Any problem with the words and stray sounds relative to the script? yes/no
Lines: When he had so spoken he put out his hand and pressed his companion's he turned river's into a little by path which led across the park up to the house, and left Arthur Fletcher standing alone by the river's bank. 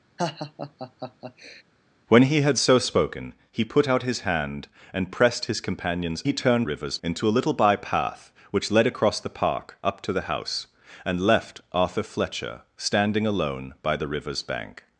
yes